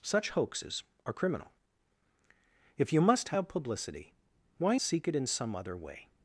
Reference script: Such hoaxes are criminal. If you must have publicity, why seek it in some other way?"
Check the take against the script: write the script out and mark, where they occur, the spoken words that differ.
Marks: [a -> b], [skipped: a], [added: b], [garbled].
Such hoaxes are criminal. If you must have publicity, why seek it in some other way?"